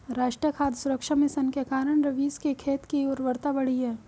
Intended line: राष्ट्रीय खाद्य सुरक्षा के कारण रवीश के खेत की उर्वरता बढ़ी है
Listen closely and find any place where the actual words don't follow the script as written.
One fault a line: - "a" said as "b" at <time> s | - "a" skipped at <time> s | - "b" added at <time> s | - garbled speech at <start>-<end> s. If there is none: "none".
- "मिशन" added at 1.1 s